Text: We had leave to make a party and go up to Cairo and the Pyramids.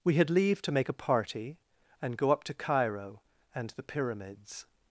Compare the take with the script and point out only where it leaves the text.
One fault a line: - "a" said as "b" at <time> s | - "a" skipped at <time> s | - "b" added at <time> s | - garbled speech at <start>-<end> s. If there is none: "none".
none